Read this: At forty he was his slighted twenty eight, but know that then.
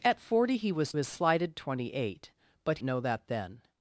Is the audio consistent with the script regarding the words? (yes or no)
yes